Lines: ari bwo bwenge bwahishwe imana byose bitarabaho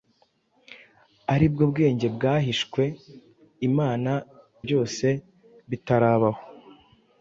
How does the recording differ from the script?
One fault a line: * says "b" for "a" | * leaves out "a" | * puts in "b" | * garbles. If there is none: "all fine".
all fine